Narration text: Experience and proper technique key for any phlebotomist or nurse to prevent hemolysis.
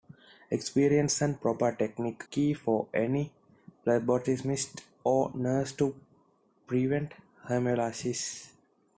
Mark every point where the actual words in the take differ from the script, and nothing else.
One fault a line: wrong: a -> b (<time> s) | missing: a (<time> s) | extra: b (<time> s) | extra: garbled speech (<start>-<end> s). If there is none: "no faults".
no faults